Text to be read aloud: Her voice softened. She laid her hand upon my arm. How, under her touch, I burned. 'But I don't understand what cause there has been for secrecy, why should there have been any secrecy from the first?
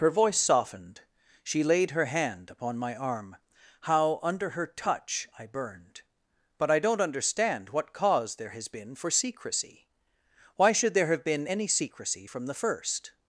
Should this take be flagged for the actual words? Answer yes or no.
no